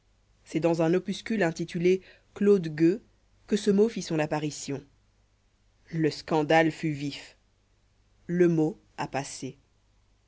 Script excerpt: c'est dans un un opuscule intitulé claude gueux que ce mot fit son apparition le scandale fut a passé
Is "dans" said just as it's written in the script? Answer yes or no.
yes